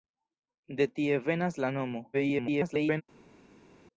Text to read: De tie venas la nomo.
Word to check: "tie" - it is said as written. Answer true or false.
true